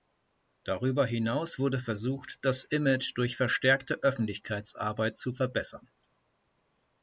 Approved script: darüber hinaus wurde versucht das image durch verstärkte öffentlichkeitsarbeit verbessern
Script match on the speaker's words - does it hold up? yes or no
no